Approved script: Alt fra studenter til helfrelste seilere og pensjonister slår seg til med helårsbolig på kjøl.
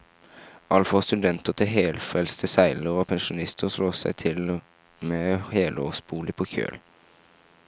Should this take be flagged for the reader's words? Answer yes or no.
no